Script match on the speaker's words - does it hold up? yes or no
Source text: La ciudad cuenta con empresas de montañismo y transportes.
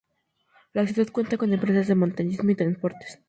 yes